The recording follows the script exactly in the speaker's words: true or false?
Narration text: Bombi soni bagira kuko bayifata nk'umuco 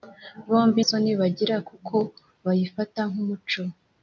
true